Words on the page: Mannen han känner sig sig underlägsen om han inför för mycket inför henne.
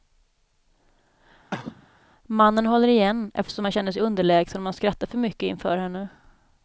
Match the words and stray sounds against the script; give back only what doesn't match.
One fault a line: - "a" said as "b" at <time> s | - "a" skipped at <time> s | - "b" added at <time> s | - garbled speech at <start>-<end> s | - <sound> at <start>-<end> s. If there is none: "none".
- cough at 1.5-1.9 s
- "håller igen eftersom" added at 2.7 s
- "sig" skipped at 4.0 s
- "inför" said as "skrattar" at 4.7 s